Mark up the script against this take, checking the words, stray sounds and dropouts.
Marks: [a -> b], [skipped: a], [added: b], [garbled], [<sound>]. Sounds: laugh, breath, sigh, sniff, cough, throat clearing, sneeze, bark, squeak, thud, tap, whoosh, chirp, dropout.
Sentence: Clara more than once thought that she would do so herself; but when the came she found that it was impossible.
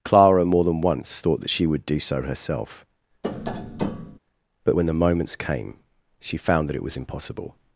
Clara more than once thought that she would do so herself; [tap] but when the [added: moments] came she found that it was impossible.